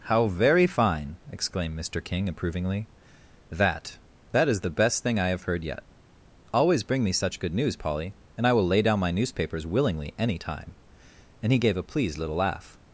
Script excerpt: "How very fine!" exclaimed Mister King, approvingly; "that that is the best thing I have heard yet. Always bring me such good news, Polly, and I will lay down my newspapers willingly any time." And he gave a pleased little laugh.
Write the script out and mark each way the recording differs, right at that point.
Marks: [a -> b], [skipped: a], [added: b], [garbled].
"How very fine!" exclaimed Mister King, approvingly; "that that is the best thing I have heard yet. Always bring me such good news, Polly, and I will lay down my newspapers willingly any time." And he gave a pleased little laugh.